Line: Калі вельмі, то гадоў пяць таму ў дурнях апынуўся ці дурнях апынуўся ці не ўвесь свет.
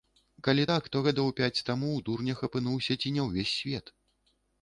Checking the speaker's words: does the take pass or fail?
fail